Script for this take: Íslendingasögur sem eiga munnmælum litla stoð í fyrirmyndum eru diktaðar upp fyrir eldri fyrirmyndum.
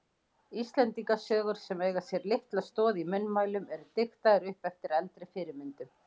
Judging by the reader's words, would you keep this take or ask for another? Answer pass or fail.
fail